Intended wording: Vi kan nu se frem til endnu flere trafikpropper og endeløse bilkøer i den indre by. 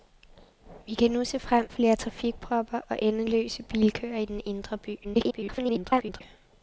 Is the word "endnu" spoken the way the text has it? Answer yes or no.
no